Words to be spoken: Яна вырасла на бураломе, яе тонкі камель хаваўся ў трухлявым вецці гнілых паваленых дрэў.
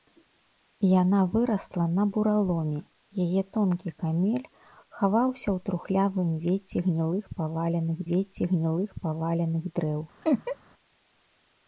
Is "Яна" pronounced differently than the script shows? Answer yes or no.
no